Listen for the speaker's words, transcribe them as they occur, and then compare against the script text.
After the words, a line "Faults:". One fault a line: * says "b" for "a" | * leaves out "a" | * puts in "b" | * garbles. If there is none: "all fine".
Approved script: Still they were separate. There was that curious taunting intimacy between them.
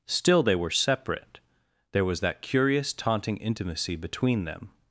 Still they were separate. There was that curious taunting intimacy between them.
Faults:
all fine